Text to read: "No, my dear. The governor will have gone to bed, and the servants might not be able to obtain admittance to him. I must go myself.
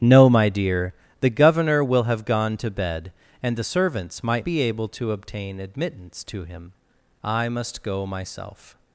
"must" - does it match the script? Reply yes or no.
yes